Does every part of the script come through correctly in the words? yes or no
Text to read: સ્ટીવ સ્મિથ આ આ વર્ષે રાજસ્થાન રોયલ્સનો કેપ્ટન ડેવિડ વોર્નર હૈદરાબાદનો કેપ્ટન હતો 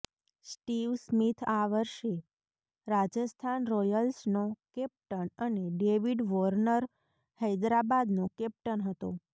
no